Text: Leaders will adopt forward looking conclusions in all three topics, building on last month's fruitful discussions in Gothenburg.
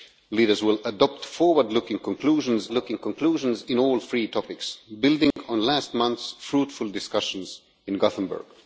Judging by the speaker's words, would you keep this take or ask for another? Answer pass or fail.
fail